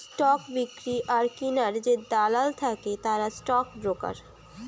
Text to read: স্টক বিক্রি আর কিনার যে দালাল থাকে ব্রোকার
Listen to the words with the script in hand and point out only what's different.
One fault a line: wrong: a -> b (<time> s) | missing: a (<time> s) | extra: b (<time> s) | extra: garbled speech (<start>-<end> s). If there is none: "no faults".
extra: তারা স্টক (3.0 s)